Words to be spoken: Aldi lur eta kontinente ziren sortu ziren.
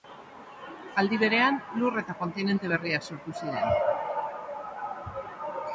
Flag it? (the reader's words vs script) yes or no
yes